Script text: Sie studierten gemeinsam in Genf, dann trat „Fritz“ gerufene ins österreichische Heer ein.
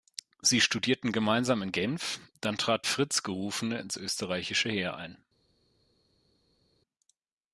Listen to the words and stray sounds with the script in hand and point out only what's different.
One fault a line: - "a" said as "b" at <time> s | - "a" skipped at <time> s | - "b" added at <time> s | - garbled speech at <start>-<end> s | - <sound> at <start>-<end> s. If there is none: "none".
none